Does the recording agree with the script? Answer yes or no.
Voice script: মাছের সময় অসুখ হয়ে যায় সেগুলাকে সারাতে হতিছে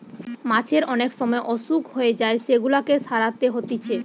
no